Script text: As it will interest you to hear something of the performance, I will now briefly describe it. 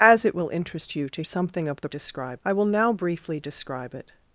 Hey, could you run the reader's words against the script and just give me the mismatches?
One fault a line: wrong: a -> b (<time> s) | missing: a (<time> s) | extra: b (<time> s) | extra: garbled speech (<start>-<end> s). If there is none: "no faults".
missing: hear (1.2 s)
wrong: performance -> describe (1.9 s)